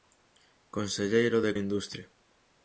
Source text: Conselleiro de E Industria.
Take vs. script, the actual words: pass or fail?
pass